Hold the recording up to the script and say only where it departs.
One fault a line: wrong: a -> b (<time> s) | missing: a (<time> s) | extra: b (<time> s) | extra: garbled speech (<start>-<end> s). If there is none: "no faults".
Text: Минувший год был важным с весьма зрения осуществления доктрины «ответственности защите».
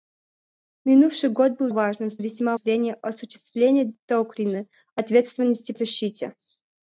no faults